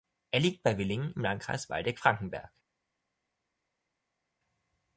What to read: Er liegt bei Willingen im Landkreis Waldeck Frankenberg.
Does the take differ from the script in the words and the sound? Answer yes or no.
no